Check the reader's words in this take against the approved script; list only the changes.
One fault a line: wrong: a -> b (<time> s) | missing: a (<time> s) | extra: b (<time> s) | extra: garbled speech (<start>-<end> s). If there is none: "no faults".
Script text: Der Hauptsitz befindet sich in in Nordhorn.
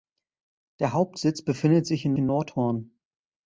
no faults